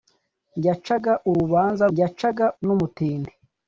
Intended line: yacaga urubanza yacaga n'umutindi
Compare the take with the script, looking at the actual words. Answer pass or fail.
pass